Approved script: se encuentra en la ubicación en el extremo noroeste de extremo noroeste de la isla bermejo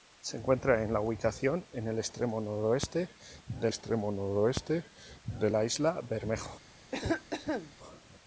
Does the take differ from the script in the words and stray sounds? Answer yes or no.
yes